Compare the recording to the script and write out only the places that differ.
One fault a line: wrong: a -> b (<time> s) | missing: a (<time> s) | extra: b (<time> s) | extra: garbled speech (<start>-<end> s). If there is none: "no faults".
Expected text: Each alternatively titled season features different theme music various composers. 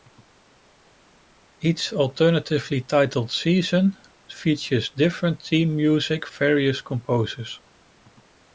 no faults